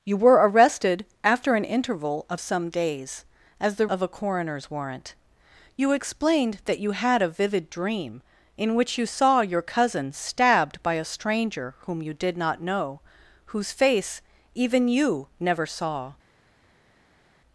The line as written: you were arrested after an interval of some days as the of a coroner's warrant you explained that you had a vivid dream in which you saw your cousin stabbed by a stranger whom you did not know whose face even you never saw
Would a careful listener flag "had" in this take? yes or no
no